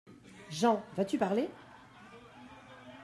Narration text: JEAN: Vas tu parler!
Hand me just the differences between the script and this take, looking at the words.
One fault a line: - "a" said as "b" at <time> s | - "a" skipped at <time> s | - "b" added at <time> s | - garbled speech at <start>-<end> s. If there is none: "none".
none